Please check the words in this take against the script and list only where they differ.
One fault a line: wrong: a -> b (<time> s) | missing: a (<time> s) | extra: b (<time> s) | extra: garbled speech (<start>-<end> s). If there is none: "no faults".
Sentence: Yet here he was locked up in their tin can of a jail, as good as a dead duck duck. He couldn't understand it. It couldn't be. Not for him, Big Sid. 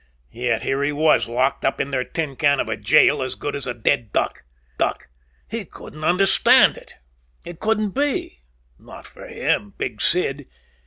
no faults